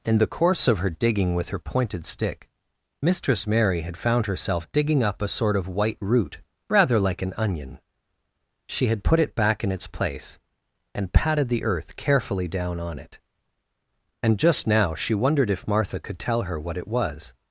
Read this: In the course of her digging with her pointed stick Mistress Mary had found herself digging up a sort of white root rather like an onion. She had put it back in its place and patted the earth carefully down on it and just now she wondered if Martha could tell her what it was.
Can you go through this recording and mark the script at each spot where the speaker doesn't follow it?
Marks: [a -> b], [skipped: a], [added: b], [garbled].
In the course of her digging with her pointed stick Mistress Mary had found herself digging up a sort of white root rather like an onion. She had put it back in its place and patted the earth carefully down on it and just now she wondered if Martha could tell her what it was.